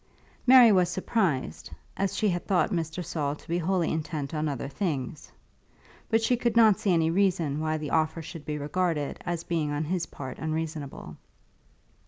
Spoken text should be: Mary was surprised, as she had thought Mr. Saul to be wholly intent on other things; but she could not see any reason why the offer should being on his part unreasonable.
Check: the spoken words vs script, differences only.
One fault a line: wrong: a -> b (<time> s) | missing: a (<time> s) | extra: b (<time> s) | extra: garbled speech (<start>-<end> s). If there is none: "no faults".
extra: be regarded as (8.4 s)